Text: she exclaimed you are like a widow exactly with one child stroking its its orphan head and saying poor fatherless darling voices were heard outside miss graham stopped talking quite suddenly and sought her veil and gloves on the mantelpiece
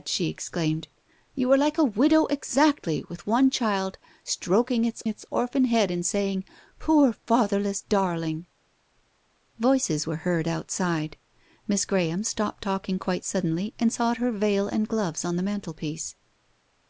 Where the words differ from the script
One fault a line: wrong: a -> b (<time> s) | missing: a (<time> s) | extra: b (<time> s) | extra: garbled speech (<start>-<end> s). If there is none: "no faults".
no faults